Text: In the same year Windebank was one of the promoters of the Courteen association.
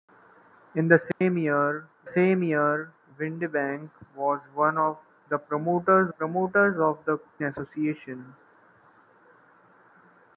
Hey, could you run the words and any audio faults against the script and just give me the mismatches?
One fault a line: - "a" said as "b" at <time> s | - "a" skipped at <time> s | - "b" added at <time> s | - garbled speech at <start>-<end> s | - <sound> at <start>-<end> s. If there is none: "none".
- dropout at 1.1-1.2 s
- "same year" added at 2.0 s
- "promoters" added at 6.1 s
- "Courteen" skipped at 7.2 s